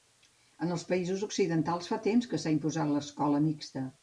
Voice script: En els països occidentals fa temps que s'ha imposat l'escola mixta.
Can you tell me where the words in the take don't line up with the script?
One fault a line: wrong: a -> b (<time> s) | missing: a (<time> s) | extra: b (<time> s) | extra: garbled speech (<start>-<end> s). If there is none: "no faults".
no faults